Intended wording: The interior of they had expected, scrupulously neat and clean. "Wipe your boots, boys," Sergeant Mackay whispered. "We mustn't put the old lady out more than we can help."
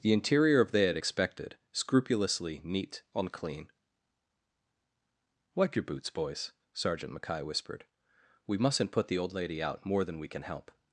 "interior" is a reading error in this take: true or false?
false